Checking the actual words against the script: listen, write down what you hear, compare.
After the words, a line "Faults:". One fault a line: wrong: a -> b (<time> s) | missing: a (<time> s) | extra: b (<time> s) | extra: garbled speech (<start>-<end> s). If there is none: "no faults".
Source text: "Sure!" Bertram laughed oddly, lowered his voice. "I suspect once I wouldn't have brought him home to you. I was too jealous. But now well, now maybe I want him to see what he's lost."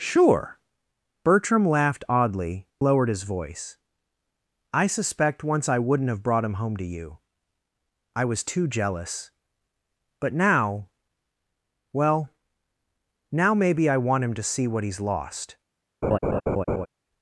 "Sure!" Bertram laughed oddly, lowered his voice. "I suspect once I wouldn't have brought him home to you. I was too jealous. But now well, now maybe I want him to see what he's lost."
Faults:
no faults